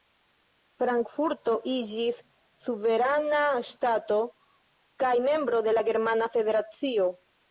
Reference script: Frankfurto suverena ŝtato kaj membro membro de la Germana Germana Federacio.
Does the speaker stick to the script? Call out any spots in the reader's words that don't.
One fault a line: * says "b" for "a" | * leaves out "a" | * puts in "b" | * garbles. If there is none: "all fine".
* puts in "iĝis"
* leaves out "membro"
* leaves out "Germana"